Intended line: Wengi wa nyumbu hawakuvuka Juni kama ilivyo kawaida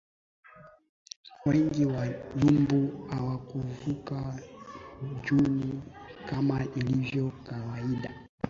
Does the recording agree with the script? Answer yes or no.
yes